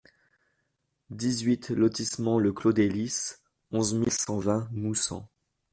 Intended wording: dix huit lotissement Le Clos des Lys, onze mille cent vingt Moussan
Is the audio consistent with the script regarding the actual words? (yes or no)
yes